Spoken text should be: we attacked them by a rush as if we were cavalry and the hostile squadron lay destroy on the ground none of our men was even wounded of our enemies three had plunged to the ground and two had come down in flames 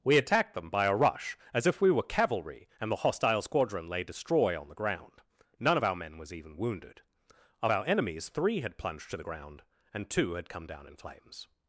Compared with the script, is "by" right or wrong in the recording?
right